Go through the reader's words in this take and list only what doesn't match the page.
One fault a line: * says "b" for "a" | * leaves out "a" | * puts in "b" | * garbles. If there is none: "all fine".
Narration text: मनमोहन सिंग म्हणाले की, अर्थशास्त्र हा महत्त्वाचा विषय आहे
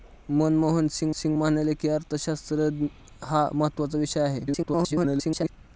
* puts in "सिंग"
* garbles